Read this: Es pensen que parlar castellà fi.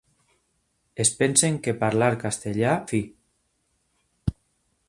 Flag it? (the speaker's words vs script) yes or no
no